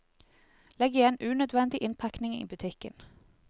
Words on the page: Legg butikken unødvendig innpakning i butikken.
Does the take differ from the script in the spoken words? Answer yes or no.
yes